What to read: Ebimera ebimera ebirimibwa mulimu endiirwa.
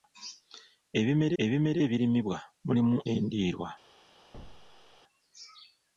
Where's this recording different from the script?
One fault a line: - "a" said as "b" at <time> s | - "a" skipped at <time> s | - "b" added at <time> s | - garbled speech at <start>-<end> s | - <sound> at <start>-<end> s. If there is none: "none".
- thud at 4.3-5.0 s